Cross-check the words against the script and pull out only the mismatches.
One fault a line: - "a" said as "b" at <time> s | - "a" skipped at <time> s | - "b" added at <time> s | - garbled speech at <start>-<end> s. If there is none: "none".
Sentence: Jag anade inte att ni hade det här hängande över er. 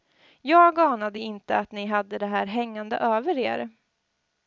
none